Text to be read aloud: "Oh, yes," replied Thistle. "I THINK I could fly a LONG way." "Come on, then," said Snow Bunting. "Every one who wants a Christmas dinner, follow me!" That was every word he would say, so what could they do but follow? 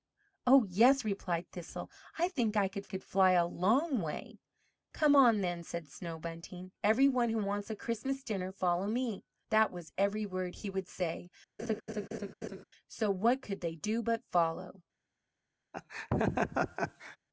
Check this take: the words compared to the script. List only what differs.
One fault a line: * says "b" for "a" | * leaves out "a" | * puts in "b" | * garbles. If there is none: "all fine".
* puts in "could"